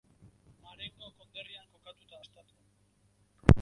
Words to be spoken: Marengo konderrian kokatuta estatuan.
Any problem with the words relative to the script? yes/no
no